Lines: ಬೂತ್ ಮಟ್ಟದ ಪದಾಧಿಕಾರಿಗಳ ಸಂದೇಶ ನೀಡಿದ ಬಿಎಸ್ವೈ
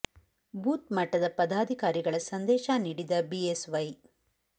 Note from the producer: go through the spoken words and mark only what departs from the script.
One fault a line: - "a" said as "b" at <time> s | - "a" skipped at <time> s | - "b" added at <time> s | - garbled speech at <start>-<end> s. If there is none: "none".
none